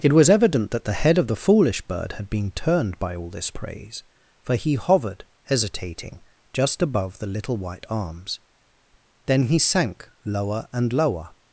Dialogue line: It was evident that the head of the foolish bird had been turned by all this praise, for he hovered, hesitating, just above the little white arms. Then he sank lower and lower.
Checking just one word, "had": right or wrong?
right